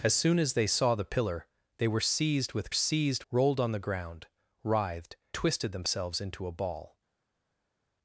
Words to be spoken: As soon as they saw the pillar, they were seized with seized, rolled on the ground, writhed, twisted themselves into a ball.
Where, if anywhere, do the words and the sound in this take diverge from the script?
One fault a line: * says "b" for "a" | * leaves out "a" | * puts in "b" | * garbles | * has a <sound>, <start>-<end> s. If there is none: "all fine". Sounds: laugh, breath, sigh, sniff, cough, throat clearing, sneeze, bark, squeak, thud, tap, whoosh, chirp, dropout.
all fine